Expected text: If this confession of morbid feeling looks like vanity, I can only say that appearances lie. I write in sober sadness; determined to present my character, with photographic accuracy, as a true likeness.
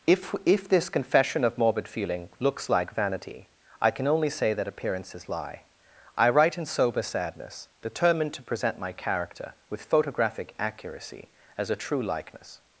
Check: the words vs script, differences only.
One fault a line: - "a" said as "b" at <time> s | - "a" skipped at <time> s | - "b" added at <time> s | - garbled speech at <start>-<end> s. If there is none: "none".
- "if" added at 0.5 s